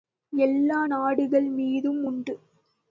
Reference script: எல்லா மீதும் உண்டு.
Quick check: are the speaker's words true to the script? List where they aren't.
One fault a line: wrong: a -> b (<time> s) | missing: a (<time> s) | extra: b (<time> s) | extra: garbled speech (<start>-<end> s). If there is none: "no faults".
extra: நாடுகள் (0.8 s)